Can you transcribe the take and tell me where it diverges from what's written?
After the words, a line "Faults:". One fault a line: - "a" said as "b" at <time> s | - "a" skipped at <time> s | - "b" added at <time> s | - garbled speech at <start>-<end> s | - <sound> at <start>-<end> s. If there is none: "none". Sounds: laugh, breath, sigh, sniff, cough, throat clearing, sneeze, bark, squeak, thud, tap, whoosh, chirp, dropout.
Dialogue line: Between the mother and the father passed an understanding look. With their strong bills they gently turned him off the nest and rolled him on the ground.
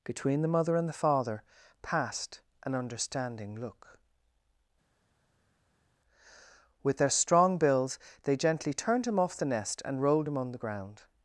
Between the mother and the father passed an understanding look. With their strong bills they gently turned him off the nest and rolled him on the ground.
Faults:
none